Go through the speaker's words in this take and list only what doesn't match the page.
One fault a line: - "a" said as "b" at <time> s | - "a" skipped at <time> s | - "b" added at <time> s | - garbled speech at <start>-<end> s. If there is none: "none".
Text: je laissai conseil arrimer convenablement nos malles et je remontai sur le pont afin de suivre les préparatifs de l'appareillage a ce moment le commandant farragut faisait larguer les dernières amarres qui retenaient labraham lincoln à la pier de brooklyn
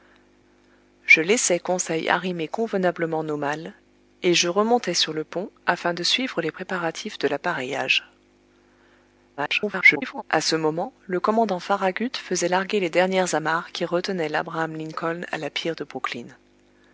- garbled speech at 9.4-10.2 s